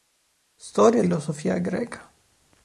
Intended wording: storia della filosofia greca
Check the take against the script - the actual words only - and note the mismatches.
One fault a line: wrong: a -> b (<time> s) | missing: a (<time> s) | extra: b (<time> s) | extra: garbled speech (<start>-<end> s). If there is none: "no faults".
missing: della (1.0 s)